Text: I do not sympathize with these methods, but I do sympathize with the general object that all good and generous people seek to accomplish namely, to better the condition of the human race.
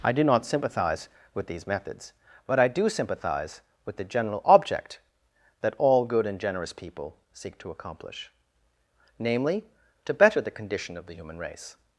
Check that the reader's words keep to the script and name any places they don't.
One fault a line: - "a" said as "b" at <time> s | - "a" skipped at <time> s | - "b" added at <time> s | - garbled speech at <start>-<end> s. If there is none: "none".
none